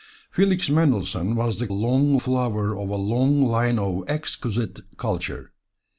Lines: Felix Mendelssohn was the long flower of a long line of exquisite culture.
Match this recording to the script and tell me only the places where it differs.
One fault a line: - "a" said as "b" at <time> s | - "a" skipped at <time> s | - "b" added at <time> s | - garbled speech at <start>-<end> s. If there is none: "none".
none